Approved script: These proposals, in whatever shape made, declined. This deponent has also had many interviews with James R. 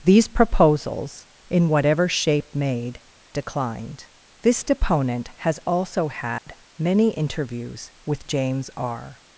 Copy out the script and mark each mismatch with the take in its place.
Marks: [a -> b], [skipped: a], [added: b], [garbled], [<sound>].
These proposals, in whatever shape made, declined. This deponent has also had [dropout] many interviews with James R.